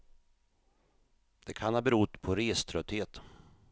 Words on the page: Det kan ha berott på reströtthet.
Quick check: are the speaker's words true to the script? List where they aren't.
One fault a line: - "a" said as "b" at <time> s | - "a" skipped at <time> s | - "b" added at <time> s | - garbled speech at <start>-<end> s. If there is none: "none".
none